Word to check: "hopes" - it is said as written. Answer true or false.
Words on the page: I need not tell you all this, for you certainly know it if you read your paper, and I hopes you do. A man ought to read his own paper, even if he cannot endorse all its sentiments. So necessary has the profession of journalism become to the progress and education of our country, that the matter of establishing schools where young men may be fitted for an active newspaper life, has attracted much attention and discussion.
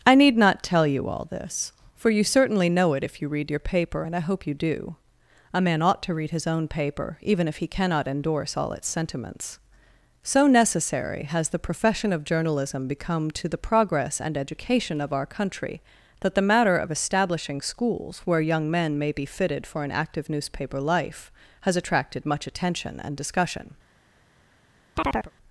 false